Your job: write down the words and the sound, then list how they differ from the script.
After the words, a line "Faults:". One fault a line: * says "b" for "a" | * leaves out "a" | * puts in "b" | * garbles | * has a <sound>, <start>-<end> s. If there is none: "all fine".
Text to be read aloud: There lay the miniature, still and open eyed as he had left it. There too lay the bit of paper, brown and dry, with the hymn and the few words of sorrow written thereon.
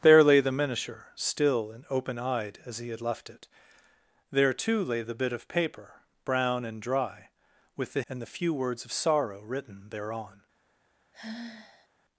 There lay the miniature, still and open eyed as he had left it. There too lay the bit of paper, brown and dry, with the and the few words of sorrow written thereon.
Faults:
* leaves out "hymn"
* has a sigh, 11.1-11.9 s